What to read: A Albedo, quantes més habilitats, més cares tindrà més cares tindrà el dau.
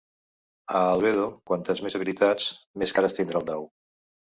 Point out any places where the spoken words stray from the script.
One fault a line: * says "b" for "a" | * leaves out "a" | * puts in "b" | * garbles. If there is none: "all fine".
* leaves out "més cares tindrà"